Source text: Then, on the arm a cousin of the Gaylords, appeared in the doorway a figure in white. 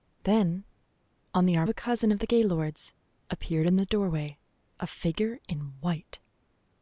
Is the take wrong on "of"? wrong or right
right